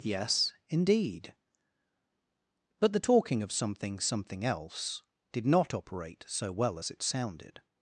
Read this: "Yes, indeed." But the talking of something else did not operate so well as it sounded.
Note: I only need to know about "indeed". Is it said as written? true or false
true